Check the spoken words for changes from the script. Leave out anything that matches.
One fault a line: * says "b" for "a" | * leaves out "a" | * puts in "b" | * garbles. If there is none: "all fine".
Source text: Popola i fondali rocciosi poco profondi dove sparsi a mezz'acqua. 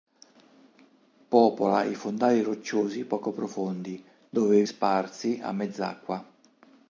all fine